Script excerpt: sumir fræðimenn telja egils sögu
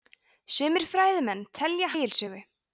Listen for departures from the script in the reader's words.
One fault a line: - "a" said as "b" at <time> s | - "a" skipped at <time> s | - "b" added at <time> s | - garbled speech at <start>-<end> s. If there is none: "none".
none